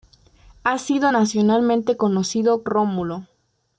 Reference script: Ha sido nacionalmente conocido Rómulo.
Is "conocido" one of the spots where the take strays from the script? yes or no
no